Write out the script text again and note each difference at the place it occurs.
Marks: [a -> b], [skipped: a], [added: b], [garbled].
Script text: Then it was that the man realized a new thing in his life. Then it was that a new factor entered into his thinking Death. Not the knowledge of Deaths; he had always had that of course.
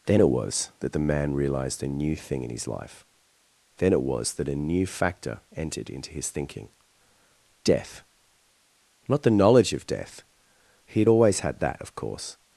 Then it was that the man realized a new thing in his life. Then it was that a new factor entered into his thinking Death. Not the knowledge of [Deaths; -> Death] he had always had that of course.